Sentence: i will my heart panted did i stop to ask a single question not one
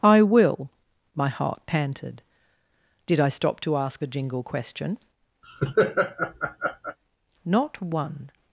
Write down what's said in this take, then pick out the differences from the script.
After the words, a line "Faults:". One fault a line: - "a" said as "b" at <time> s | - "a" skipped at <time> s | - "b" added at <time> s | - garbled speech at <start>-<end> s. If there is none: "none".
i will my heart panted did i stop to ask a jingle question not one
Faults:
- "single" said as "jingle" at 4.1 s